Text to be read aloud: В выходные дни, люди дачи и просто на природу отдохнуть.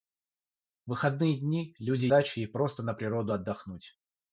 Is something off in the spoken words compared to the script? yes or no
no